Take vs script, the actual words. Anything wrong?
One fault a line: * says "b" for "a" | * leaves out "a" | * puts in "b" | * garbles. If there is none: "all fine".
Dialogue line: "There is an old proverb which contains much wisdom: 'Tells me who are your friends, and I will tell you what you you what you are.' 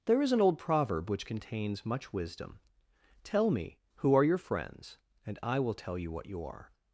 * says "Tell" for "Tells"
* leaves out "you what you"